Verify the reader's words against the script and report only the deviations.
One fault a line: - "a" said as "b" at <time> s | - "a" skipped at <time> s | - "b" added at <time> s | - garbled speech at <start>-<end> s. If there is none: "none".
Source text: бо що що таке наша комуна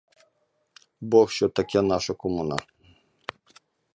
- "що" skipped at 1.5 s